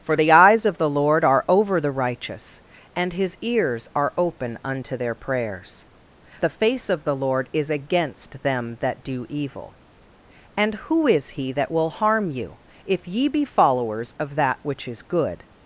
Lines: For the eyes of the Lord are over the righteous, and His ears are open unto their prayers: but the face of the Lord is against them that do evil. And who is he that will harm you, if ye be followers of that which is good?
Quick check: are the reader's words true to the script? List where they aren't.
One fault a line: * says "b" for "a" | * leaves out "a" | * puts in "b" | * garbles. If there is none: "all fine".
* leaves out "but"